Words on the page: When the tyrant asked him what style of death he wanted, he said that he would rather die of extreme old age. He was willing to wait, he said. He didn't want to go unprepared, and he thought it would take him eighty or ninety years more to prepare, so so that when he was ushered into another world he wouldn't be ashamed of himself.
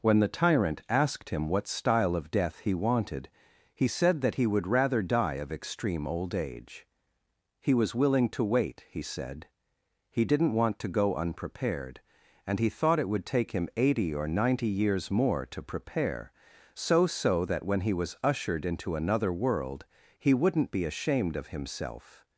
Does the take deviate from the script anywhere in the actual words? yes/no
no